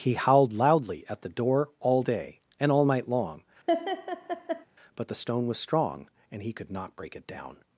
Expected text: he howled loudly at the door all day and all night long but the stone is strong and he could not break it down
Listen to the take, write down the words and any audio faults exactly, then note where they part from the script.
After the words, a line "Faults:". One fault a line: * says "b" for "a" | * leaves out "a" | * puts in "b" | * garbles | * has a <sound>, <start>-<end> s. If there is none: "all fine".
he howled loudly at the door all day and all night long but the stone was strong and he could not break it down
Faults:
* has a laugh, 3.7-4.7 s
* says "was" for "is"